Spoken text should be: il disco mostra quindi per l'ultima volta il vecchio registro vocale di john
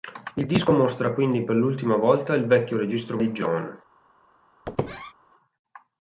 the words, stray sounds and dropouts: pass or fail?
fail